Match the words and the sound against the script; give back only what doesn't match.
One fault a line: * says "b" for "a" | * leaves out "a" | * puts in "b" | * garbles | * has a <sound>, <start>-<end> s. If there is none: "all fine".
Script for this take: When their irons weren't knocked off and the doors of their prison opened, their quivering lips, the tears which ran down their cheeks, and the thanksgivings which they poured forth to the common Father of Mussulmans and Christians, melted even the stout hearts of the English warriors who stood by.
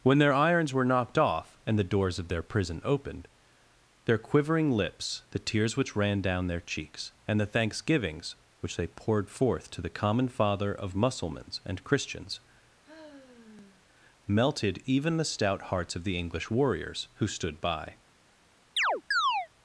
* says "were" for "weren't"
* has a sigh, 12.8-13.8 s
* has a chirp, 18.8-19.5 s